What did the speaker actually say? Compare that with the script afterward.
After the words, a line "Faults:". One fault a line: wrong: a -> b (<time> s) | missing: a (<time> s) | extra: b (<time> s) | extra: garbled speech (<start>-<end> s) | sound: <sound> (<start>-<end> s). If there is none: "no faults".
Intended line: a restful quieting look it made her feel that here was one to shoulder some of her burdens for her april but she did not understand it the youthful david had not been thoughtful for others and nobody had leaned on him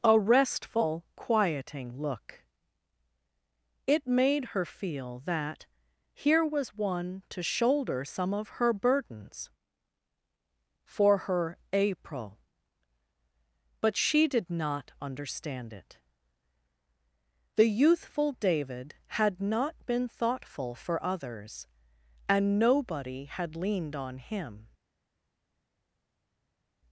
a restful quieting look it made her feel that here was one to shoulder some of her burdens for her april but she did not understand it the youthful david had not been thoughtful for others and nobody had leaned on him
Faults:
no faults